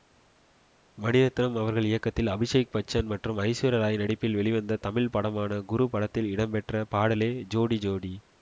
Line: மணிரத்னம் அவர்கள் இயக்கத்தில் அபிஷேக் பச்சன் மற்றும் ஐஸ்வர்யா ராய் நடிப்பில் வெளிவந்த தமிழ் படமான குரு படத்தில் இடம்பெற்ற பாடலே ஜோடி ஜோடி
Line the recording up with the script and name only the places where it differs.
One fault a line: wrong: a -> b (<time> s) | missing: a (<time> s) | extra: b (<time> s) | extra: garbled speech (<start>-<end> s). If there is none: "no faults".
no faults